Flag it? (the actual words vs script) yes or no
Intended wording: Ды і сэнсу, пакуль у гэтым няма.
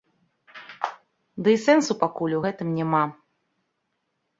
no